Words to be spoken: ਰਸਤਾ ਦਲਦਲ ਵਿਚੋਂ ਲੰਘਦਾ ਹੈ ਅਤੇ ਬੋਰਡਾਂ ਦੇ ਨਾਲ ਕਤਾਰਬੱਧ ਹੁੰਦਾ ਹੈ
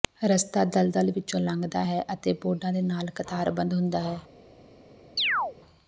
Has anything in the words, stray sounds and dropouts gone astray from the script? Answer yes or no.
yes